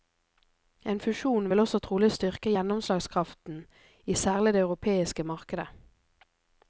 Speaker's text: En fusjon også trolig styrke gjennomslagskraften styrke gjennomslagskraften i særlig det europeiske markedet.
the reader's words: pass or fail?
fail